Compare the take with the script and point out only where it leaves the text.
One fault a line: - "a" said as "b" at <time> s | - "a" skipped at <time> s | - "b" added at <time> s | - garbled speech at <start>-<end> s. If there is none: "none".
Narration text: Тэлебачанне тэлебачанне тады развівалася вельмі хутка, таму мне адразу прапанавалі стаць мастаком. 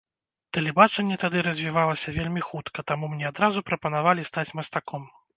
- "тэлебачанне" skipped at 1.2 s